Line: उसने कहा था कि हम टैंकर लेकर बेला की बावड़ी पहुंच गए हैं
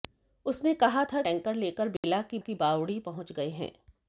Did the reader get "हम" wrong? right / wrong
wrong